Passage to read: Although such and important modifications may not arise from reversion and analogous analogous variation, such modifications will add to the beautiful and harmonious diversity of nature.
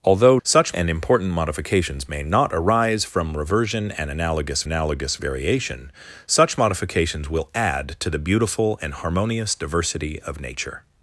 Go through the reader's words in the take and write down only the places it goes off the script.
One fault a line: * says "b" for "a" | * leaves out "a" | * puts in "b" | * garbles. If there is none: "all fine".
all fine